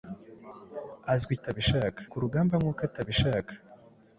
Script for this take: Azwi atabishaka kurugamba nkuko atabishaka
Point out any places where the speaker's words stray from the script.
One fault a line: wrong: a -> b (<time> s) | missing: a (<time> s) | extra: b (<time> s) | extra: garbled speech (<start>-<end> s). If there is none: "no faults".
no faults